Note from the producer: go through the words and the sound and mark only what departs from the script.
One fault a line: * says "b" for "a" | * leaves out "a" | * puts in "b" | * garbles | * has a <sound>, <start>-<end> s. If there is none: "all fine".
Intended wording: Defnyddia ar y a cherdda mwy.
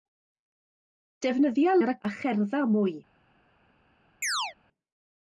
* has a chirp, 4.2-4.5 s